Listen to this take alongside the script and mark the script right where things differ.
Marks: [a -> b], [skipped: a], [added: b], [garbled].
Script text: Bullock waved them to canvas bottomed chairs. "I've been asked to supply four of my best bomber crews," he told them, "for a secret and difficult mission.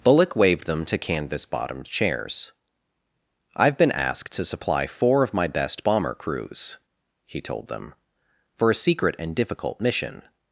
Bullock waved them to canvas bottomed chairs. "I've been asked to supply four of my best bomber crews," he told them, "for a secret and difficult mission.